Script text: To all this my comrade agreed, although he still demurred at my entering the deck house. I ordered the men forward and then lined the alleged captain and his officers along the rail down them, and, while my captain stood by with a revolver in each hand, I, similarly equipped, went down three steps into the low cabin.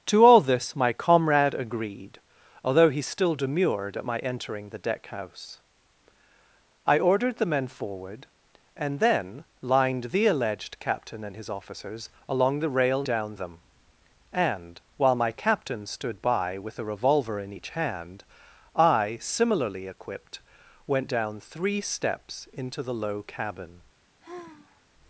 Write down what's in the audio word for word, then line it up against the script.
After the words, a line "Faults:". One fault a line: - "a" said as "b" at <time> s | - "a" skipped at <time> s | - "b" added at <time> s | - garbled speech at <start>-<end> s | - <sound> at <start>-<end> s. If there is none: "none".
To all this my comrade agreed, although he still demurred at my entering the deck house. I ordered the men forward and then lined the alleged captain and his officers along the rail down them, and, while my captain stood by with a revolver in each hand, I, similarly equipped, went down three steps into the low cabin.
Faults:
- sigh at 24.2-24.9 s